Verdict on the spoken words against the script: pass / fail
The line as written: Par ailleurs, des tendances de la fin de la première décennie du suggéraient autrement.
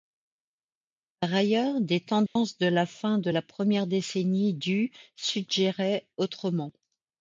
pass